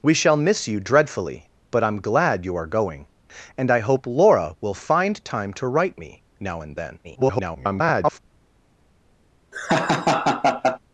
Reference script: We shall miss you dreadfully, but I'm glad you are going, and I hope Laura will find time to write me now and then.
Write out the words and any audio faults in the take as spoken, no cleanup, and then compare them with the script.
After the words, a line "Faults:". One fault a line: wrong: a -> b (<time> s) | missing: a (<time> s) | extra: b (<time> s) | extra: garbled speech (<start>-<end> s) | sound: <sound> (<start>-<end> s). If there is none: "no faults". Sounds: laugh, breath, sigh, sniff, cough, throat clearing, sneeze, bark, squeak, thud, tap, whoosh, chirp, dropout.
We shall miss you dreadfully, but I'm glad you are going, and I hope Laura will find time to write me now and then. [garbled]
Faults:
extra: garbled speech (7.0-8.2 s)
sound: laugh (9.5-10.8 s)